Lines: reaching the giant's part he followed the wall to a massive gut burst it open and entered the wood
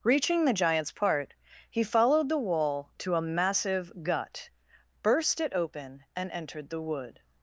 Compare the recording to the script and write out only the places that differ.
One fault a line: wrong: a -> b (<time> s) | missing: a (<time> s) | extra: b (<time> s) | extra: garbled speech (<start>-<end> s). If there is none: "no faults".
no faults